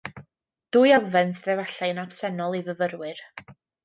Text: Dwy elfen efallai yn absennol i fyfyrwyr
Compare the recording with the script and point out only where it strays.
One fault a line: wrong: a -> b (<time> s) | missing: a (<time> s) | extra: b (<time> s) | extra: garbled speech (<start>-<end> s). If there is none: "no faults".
extra: sydd (1.4 s)